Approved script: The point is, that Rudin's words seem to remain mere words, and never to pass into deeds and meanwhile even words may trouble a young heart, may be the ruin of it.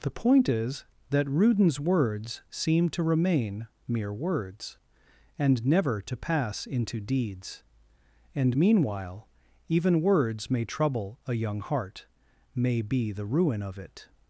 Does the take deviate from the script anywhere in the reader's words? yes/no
no